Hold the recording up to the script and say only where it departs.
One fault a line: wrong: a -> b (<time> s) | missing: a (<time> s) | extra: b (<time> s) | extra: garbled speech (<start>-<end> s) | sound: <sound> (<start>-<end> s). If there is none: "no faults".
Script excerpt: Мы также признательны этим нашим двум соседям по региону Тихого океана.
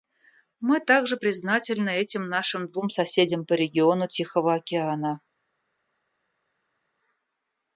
no faults